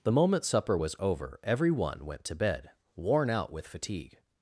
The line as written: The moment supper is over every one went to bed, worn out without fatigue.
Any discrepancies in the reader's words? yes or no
yes